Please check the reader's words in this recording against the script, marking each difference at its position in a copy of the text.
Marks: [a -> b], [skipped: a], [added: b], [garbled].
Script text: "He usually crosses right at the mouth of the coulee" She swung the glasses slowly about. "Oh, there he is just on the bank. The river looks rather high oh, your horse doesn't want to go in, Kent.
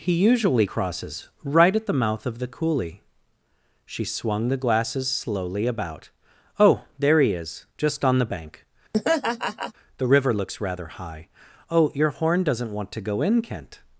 "He usually crosses right at the mouth of the coulee" She swung the glasses slowly about. "Oh, there he is just on the bank. The river looks rather high oh, your [horse -> horn] doesn't want to go in, Kent.